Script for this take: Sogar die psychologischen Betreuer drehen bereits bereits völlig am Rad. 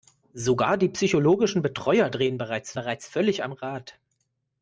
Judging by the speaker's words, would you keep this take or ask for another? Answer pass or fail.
pass